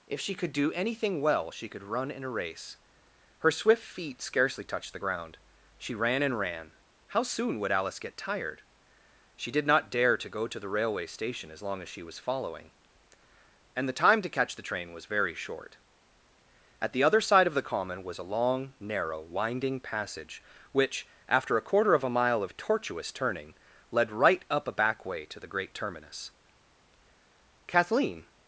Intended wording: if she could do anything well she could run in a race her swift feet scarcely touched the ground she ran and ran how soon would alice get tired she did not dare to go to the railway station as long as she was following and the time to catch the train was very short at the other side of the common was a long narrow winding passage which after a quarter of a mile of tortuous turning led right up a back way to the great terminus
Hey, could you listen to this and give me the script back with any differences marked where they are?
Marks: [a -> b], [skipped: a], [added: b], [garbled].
if she could do anything well she could run in a race her swift feet scarcely touched the ground she ran and ran how soon would alice get tired she did not dare to go to the railway station as long as she was following and the time to catch the train was very short at the other side of the common was a long narrow winding passage which after a quarter of a mile of tortuous turning led right up a back way to the great terminus [added: kathleen]